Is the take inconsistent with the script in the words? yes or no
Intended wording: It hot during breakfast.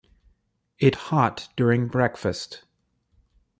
no